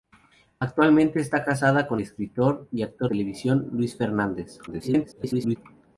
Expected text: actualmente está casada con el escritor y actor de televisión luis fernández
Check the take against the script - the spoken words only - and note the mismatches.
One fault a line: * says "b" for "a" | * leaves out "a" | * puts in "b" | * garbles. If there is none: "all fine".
* leaves out "el"
* leaves out "de"
* garbles